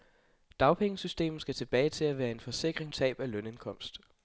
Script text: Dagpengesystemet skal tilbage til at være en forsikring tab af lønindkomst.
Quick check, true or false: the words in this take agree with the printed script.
true